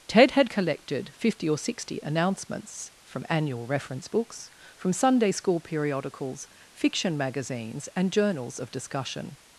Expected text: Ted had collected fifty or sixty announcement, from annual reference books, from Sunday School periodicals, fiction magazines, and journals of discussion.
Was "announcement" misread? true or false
true